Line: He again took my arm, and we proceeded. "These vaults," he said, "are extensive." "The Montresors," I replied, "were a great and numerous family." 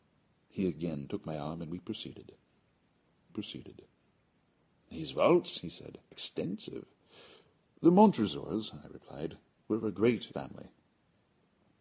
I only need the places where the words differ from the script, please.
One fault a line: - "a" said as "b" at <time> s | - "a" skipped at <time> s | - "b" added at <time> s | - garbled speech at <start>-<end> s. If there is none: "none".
- "proceeded" added at 3.3 s
- "are" skipped at 6.0 s
- "and numerous" skipped at 10.3 s